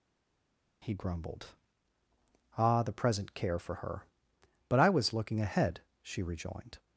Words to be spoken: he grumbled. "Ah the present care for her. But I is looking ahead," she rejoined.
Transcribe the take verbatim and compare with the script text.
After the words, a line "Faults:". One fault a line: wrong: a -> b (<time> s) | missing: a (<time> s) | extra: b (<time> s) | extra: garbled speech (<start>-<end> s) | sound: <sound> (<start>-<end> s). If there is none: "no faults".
he grumbled. "Ah the present care for her. But I was looking ahead," she rejoined.
Faults:
wrong: is -> was (4.9 s)